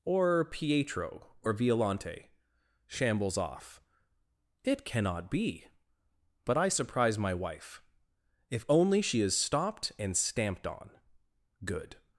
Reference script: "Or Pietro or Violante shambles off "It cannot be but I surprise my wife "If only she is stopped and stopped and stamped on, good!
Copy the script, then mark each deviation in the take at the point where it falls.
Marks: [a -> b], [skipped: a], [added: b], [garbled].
"Or Pietro or Violante shambles off "It cannot be but I surprise my wife "If only she is stopped and [skipped: stopped and] stamped on, good!